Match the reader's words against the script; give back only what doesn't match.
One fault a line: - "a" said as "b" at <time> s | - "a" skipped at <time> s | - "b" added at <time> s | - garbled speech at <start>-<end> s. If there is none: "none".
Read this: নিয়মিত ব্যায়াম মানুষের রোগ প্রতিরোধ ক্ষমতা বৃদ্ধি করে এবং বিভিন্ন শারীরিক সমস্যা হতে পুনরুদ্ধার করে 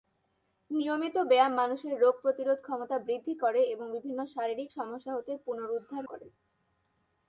none